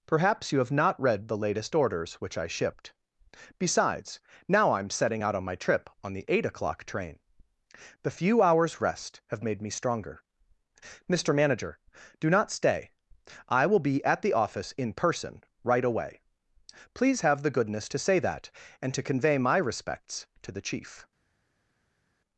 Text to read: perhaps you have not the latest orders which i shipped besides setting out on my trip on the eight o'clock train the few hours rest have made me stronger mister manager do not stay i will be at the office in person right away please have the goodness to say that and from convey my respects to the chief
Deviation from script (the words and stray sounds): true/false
true